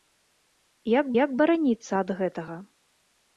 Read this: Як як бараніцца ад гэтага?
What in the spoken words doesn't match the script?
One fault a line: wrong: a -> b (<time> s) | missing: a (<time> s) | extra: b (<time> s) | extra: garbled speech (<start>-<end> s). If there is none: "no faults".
no faults